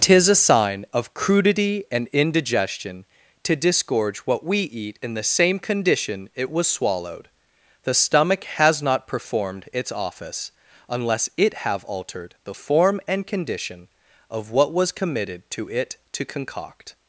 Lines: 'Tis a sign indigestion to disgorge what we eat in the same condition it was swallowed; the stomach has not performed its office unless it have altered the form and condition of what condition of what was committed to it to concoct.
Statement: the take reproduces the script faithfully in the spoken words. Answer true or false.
false